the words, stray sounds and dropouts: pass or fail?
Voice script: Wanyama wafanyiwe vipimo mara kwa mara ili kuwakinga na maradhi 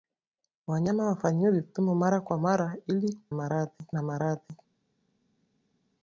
fail